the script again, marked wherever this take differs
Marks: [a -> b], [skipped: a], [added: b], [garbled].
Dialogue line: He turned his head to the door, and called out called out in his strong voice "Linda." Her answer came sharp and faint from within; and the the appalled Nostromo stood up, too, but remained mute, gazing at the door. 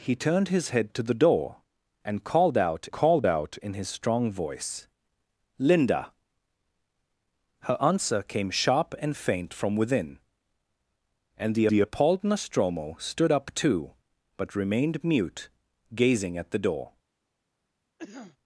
He turned his head to the door, and called out called out in his strong voice "Linda." Her answer came sharp and faint from within; and the the appalled Nostromo stood up, too, but remained mute, gazing at the door.